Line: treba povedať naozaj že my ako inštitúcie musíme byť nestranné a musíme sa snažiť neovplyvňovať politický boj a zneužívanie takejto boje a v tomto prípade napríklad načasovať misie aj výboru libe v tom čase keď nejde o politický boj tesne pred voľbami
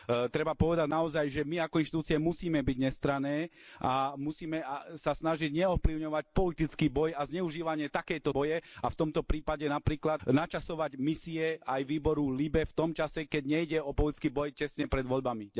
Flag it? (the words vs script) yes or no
no